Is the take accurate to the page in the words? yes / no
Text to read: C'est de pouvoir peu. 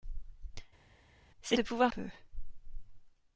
yes